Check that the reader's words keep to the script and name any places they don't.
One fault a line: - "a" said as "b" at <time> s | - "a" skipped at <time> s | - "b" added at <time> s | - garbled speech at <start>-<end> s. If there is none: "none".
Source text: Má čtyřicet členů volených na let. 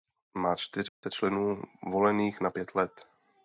- "pět" added at 2.5 s